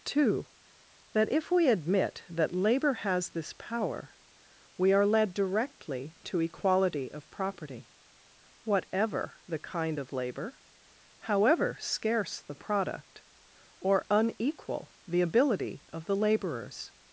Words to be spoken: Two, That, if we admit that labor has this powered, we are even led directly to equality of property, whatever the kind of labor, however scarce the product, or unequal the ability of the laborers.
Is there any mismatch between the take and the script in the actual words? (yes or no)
yes